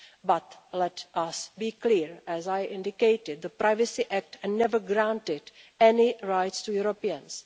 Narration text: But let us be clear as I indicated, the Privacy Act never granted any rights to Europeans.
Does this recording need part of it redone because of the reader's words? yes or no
no